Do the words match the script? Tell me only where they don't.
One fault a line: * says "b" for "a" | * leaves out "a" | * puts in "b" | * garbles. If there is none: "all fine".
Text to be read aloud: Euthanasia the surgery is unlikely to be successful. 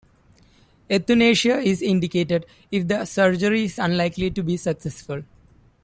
* puts in "is indicated if"